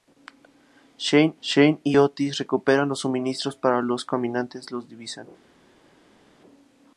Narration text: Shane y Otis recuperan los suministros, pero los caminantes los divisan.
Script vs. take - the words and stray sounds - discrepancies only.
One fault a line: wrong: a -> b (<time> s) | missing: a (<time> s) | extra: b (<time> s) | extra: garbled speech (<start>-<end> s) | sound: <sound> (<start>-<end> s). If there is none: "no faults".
extra: shane (1.4 s)